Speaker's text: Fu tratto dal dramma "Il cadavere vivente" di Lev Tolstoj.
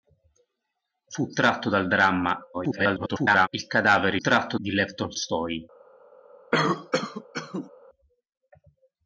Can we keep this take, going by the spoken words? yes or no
no